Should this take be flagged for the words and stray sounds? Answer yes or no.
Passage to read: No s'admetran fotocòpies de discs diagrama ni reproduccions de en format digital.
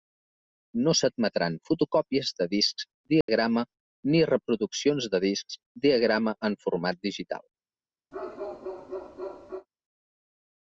yes